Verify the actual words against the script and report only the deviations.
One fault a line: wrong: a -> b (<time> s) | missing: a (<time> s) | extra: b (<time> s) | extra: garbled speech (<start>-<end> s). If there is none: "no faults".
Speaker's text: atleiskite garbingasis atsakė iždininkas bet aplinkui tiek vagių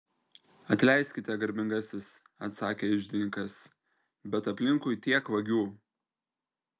no faults